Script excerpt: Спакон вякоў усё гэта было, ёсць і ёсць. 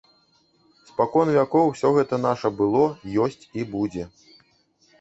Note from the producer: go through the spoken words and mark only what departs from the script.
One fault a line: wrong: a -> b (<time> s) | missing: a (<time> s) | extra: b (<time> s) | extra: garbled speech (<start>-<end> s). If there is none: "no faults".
extra: наша (2.3 s)
wrong: ёсць -> будзе (3.8 s)